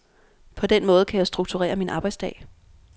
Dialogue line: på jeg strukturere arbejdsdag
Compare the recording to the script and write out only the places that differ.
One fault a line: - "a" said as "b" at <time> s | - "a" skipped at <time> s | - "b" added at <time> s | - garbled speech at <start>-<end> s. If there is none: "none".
- "den måde kan" added at 0.7 s
- "min" added at 1.8 s